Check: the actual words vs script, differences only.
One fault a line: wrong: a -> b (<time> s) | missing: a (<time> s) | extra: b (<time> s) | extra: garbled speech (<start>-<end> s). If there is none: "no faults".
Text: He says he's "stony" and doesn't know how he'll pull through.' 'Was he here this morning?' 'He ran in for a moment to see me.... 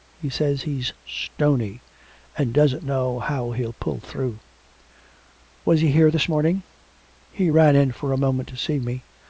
no faults